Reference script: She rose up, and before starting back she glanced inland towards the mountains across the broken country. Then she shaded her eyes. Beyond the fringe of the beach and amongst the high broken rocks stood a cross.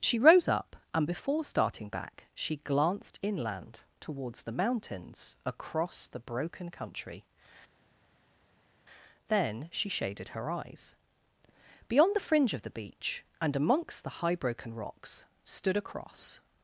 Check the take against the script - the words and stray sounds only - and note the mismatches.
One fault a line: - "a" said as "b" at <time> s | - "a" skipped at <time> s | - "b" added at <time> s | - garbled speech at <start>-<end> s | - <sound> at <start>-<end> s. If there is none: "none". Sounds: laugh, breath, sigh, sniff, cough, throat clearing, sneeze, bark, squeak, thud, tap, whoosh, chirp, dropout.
none